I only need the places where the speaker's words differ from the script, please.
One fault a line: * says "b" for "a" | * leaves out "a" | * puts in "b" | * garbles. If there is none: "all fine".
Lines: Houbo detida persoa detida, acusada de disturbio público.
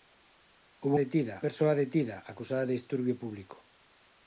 all fine